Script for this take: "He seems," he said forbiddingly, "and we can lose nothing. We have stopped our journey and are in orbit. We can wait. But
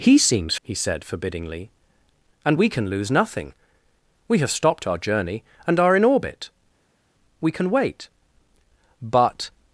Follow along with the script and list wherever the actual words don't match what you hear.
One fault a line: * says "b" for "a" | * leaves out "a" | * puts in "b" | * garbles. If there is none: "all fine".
all fine